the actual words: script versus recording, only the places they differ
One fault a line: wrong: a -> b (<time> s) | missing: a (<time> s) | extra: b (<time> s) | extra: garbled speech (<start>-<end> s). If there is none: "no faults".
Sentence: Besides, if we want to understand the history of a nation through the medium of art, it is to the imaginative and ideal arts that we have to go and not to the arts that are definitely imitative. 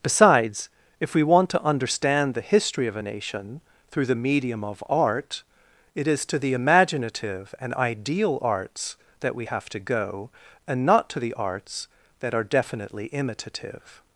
no faults